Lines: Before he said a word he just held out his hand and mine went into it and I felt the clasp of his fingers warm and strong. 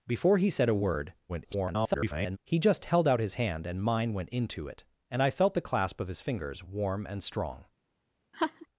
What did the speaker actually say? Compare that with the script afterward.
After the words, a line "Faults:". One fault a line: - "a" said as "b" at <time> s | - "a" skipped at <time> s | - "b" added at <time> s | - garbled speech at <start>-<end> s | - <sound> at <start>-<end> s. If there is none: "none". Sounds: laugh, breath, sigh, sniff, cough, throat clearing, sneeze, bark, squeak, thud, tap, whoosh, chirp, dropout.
Before he said a word [garbled] he just held out his hand and mine went into it and I felt the clasp of his fingers warm and strong.
Faults:
- garbled speech at 1.3-2.4 s
- laugh at 8.3-8.7 s